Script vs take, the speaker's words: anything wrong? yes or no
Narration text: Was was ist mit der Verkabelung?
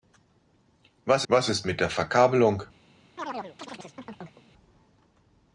no